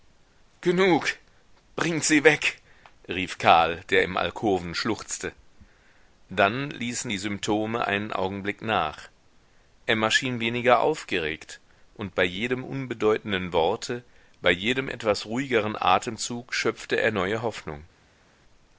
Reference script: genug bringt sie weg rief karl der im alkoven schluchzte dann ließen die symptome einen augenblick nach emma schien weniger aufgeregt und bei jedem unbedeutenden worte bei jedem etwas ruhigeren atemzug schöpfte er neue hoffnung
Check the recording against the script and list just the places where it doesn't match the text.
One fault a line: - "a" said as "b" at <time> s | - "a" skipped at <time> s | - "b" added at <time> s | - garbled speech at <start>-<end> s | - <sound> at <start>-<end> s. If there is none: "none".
none